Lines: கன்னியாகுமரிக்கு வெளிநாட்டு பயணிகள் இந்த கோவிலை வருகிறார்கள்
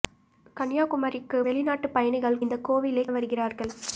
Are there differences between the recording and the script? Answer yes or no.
no